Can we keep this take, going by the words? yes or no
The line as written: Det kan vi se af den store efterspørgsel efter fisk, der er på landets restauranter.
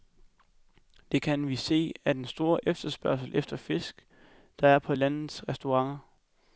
yes